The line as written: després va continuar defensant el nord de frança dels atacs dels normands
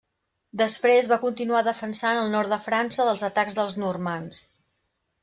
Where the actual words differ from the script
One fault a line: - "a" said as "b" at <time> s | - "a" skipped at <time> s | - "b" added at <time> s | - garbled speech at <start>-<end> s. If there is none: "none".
none